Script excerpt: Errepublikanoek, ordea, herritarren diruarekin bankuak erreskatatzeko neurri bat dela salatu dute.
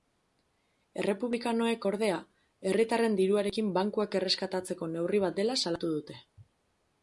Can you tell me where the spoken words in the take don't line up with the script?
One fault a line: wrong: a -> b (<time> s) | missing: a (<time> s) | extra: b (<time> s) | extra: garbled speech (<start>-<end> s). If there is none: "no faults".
no faults